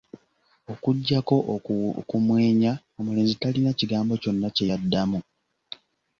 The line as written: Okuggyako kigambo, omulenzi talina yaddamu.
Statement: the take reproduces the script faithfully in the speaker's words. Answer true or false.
false